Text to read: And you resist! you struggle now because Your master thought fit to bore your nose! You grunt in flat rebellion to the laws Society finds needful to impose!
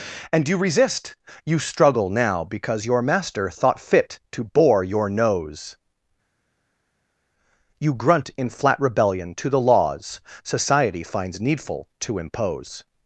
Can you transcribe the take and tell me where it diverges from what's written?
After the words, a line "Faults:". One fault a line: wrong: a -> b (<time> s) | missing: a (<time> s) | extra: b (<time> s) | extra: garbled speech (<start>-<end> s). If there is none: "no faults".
And you resist! you struggle now because Your master thought fit to bore your nose! You grunt in flat rebellion to the laws Society finds needful to impose!
Faults:
no faults